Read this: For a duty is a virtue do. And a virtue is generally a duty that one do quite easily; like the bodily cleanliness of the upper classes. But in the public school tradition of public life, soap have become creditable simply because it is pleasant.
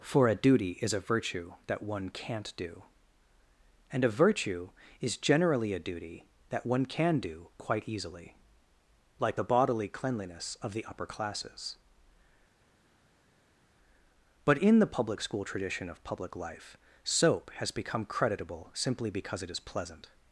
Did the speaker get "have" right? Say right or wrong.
wrong